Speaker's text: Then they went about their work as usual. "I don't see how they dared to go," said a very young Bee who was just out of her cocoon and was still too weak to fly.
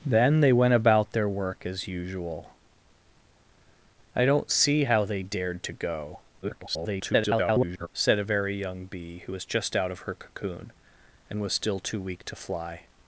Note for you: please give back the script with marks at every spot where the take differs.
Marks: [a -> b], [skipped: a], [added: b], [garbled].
Then they went about their work as usual. "I don't see how they dared to go," [garbled] said a very young Bee who was just out of her cocoon and was still too weak to fly.